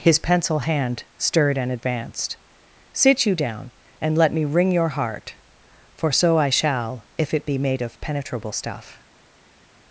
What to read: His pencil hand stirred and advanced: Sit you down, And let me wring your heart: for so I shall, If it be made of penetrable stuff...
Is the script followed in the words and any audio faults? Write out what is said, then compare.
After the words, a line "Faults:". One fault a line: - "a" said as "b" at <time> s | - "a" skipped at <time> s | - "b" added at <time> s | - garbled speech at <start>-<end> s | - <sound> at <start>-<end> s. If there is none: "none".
His pencil hand stirred and advanced: Sit you down, And let me wring your heart: for so I shall, If it be made of penetrable stuff...
Faults:
none